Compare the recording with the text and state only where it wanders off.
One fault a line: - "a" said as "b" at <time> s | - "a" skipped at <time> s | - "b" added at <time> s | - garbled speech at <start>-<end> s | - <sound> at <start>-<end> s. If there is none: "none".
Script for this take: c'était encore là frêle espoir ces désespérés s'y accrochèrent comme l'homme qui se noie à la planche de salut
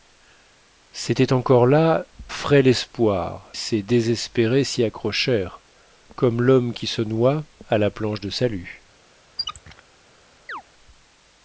- squeak at 9.4-9.8 s
- chirp at 10.5-10.6 s